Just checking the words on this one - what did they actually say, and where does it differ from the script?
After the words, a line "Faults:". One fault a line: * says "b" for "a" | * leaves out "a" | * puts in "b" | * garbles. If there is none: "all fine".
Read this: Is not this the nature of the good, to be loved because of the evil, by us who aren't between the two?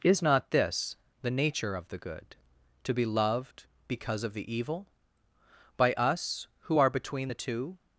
Is not this the nature of the good, to be loved because of the evil, by us who are between the two?
Faults:
* says "are" for "aren't"